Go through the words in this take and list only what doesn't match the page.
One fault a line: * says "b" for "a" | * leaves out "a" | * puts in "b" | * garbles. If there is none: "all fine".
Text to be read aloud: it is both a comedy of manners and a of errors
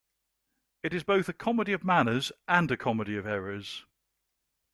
* puts in "comedy"